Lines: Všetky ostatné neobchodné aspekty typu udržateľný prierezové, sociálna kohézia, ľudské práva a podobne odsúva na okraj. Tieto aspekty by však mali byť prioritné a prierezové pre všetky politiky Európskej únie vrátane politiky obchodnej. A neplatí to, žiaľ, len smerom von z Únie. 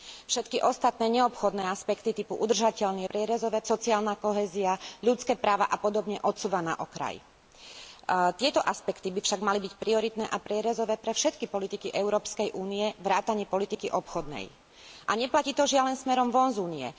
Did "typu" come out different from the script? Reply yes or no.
no